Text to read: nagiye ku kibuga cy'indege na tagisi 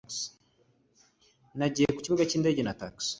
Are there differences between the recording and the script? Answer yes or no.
no